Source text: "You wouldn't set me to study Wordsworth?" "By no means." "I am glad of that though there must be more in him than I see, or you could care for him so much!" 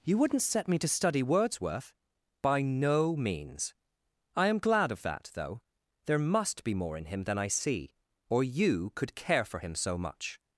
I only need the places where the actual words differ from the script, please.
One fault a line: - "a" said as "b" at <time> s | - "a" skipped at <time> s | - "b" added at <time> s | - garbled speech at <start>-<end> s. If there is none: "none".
none